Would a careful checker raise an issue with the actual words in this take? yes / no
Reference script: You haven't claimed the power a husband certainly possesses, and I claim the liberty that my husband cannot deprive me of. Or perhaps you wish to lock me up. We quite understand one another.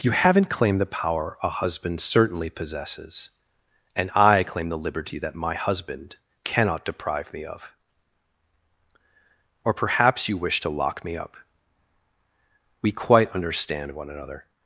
no